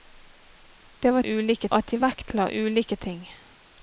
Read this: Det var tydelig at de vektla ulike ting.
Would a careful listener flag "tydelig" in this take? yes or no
yes